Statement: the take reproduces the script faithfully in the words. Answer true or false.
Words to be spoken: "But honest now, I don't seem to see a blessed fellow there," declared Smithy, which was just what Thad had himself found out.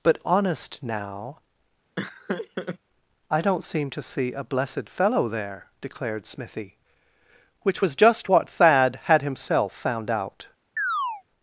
true